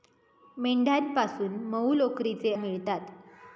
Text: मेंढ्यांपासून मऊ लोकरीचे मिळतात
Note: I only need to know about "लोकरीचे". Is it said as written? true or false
true